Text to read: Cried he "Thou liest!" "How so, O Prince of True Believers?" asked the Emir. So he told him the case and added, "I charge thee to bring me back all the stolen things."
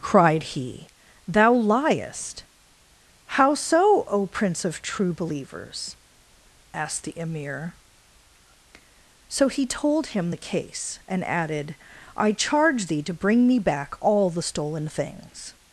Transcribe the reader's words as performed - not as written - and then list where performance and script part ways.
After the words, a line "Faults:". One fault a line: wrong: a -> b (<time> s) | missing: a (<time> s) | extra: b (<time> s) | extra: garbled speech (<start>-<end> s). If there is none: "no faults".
Cried he "Thou liest!" "How so, O Prince of True Believers?" asked the Emir. So he told him the case and added, "I charge thee to bring me back all the stolen things."
Faults:
no faults